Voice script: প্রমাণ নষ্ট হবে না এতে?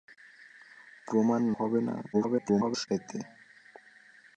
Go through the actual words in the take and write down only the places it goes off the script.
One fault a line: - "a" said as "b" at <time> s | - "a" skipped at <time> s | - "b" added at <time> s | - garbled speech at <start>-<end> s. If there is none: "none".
- "নষ্ট" skipped at 1.4 s
- garbled speech at 2.1-2.9 s